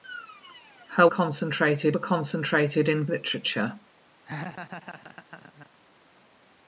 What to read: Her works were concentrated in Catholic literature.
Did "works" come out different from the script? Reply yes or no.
yes